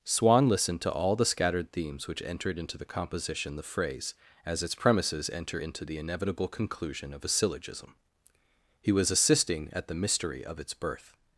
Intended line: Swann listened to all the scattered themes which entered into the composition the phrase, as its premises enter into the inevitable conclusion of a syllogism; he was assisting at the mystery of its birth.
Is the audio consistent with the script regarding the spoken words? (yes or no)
yes